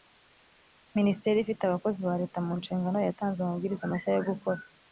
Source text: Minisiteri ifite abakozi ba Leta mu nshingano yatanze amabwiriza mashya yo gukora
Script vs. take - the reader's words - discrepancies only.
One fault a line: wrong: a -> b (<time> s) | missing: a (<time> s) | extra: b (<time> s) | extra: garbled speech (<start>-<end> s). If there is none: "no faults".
no faults